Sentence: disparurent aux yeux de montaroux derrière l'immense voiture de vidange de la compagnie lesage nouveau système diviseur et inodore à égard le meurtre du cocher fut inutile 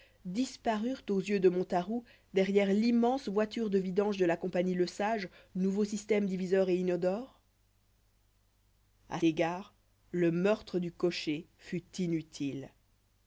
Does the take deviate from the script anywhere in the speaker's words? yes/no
no